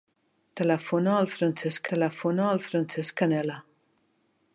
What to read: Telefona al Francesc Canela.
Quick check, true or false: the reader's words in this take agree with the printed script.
false